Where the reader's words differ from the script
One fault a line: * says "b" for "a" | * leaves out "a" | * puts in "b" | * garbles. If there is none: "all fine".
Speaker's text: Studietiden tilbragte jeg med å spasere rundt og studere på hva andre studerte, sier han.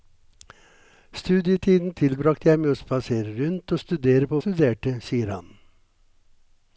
* leaves out "hva andre"